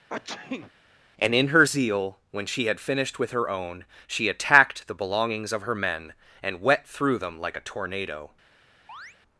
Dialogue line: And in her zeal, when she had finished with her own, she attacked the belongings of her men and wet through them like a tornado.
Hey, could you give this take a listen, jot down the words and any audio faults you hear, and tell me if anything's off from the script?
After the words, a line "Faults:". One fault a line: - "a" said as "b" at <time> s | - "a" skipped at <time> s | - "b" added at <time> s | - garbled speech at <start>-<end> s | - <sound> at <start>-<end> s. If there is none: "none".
And in her zeal, when she had finished with her own, she attacked the belongings of her men and wet through them like a tornado.
Faults:
- sneeze at 0.1-0.7 s
- chirp at 8.9-9.2 s